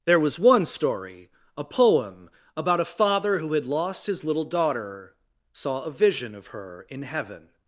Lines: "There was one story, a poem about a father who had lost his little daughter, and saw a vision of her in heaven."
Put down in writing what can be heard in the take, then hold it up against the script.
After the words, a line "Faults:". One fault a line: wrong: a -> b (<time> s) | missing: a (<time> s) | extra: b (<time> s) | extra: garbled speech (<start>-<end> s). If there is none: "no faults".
"There was one story, a poem about a father who had lost his little daughter, saw a vision of her in heaven."
Faults:
missing: and (5.2 s)